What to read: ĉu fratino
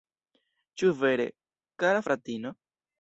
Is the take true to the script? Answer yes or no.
no